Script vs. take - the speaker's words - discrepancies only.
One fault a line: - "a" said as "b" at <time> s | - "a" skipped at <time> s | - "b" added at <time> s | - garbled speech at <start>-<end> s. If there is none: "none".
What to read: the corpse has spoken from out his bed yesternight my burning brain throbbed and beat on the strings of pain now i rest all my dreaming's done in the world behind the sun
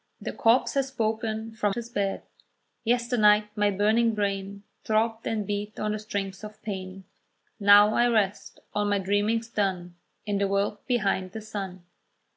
- "out" skipped at 1.8 s